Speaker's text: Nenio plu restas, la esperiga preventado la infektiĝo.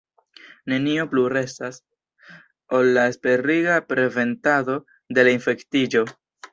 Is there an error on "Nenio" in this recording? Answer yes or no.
no